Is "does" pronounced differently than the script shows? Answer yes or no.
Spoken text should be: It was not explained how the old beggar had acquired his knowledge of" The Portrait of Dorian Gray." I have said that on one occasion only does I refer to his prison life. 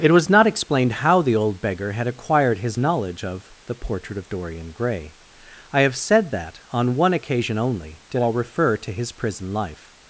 yes